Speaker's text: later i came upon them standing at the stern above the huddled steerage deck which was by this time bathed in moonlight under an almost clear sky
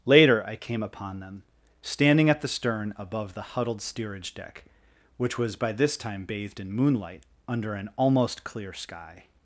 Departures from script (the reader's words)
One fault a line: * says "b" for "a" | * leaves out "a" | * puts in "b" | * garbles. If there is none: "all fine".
all fine